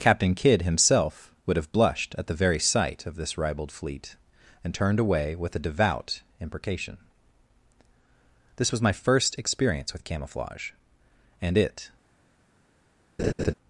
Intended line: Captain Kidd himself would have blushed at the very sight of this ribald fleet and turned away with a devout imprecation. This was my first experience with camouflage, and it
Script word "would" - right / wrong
right